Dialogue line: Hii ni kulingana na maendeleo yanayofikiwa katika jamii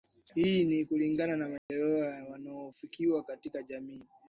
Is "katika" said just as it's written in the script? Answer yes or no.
yes